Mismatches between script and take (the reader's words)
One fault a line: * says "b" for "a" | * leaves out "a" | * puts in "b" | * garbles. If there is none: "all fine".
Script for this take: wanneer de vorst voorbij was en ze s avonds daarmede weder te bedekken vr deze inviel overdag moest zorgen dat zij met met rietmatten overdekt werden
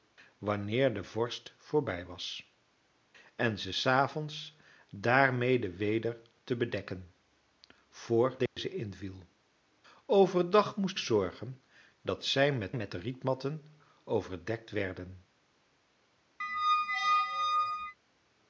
all fine